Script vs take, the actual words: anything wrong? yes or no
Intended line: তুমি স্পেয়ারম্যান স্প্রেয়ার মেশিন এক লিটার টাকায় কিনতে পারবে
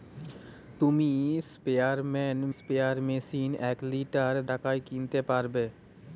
no